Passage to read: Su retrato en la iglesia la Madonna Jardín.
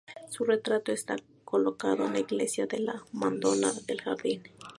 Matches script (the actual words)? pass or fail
fail